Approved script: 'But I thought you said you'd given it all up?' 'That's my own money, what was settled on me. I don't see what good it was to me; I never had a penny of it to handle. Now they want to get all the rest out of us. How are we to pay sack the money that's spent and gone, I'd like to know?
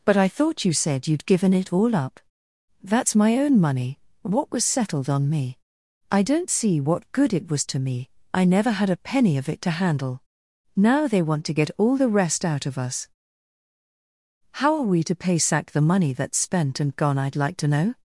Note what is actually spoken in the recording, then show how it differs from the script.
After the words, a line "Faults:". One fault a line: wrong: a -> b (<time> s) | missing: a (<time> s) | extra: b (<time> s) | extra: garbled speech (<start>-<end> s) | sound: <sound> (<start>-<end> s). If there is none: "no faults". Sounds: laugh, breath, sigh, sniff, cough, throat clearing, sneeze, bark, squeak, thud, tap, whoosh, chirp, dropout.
'But I thought you said you'd given it all up?' 'That's my own money, what was settled on me. I don't see what good it was to me; I never had a penny of it to handle. Now they want to get all the rest out of us. How are we to pay sack the money that's spent and gone, I'd like to know?
Faults:
no faults